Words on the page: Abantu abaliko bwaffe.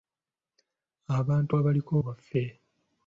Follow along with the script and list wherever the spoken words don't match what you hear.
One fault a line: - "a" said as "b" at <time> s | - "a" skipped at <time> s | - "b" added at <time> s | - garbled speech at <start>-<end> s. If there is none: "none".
none